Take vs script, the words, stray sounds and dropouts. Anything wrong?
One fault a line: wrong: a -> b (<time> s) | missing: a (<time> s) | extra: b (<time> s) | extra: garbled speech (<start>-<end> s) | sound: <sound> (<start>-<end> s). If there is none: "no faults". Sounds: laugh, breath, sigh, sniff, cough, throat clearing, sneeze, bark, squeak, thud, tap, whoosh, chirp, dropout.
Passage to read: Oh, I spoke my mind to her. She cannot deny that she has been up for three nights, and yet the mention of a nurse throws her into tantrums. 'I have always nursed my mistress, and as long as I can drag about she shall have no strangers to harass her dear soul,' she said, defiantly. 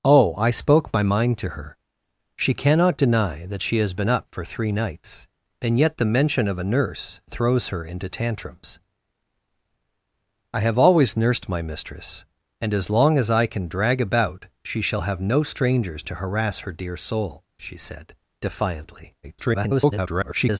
extra: garbled speech (19.2-20.6 s)